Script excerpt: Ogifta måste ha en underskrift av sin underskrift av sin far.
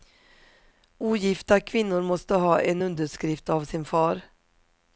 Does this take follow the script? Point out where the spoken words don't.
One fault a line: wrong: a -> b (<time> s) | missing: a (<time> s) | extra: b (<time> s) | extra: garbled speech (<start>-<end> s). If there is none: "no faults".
extra: kvinnor (1.6 s)
missing: underskrift av sin (3.8 s)